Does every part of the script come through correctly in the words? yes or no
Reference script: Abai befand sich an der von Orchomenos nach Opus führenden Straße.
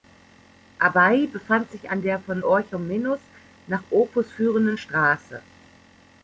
yes